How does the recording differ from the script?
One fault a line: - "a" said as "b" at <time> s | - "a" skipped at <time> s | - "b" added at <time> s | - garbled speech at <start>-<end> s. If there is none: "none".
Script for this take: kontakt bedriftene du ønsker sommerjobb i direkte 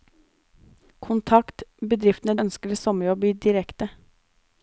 - "du" skipped at 2.4 s